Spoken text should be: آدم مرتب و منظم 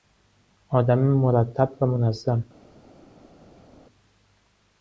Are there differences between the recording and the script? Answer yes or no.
no